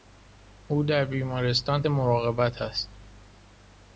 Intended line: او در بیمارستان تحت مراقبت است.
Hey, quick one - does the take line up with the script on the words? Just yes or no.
no